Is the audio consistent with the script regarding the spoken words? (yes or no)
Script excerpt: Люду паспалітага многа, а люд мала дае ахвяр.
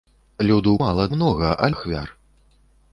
no